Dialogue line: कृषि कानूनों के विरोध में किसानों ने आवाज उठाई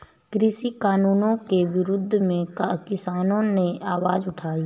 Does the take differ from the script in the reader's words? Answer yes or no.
no